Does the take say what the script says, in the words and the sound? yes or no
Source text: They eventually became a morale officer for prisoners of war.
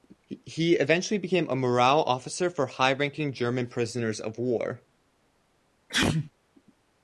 no